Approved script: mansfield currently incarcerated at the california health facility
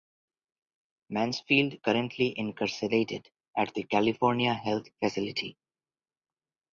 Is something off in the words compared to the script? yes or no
no